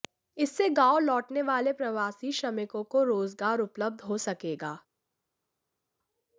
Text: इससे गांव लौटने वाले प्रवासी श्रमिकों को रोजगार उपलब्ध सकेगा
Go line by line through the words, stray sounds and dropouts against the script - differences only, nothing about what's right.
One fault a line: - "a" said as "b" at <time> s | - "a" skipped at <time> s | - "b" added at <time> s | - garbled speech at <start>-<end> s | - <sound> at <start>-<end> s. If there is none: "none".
- "हो" added at 4.0 s